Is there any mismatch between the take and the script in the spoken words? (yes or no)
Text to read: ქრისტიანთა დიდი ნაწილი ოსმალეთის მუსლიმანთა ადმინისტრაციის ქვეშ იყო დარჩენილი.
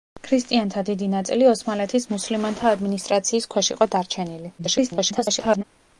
yes